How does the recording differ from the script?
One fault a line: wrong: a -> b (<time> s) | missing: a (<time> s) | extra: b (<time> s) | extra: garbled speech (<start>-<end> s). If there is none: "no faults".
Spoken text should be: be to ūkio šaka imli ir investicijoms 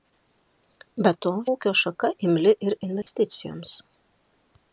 no faults